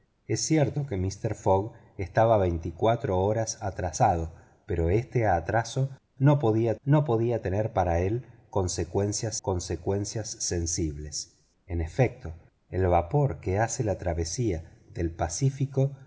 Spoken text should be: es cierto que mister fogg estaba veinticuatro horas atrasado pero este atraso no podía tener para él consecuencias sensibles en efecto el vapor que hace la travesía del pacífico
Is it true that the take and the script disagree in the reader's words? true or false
true